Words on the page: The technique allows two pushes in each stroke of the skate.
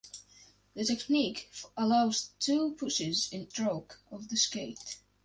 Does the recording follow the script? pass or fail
fail